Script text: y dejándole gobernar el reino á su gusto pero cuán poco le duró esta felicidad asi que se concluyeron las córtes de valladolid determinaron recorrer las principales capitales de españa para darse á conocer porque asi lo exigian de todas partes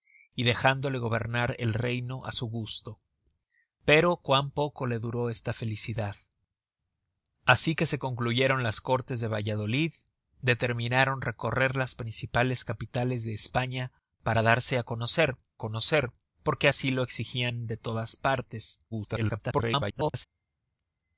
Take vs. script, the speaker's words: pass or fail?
fail